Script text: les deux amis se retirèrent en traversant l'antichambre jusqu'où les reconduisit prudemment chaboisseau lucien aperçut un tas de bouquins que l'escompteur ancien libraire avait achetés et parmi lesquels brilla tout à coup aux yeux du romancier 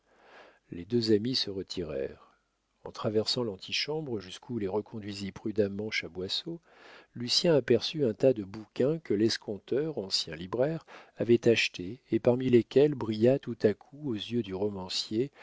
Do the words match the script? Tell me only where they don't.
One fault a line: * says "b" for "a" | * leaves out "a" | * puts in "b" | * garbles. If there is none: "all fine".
all fine